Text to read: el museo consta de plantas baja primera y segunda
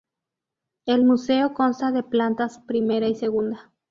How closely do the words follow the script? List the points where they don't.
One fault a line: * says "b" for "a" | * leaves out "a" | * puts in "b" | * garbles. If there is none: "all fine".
* leaves out "baja"